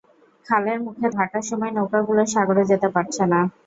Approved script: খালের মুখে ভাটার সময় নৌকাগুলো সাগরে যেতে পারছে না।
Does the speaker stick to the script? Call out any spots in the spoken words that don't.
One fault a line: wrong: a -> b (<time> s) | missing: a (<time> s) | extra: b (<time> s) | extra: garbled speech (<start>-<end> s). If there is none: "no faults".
no faults